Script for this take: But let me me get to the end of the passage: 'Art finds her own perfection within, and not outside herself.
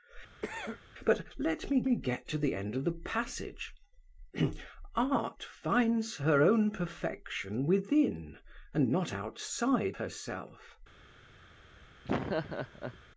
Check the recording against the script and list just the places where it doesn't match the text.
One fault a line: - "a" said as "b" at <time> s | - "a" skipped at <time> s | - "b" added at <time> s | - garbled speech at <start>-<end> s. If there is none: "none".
none